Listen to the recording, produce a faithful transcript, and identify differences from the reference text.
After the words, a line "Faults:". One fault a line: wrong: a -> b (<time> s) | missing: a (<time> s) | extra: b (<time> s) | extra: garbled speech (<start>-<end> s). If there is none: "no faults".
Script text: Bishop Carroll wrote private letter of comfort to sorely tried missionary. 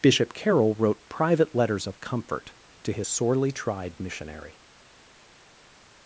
Bishop Carroll wrote private letters of comfort to his sorely tried missionary.
Faults:
wrong: letter -> letters (1.5 s)
extra: his (2.9 s)